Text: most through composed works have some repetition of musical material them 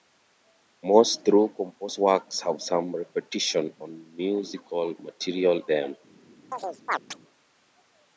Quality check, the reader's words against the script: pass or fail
pass